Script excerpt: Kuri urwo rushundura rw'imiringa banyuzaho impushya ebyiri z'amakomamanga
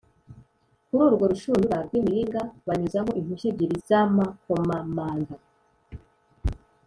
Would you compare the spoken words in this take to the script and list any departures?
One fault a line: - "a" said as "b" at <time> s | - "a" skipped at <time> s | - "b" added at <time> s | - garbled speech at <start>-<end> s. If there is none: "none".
none